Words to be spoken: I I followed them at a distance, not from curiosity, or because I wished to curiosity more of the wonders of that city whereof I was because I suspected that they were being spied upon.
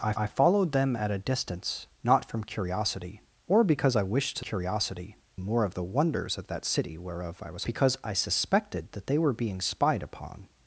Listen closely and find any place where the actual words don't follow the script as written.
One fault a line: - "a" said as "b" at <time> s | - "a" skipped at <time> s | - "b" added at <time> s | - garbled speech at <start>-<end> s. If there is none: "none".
none